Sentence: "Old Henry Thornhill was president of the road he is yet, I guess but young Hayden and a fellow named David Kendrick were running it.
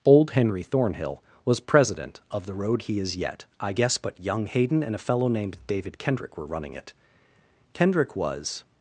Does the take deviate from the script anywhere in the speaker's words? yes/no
yes